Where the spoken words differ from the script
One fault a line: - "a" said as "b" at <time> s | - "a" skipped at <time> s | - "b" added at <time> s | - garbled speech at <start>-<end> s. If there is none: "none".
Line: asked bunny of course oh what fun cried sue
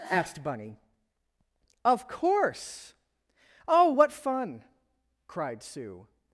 none